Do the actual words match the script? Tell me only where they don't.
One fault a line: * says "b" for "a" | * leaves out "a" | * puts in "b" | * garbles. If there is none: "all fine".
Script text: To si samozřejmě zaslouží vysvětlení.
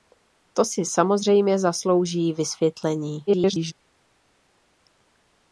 * garbles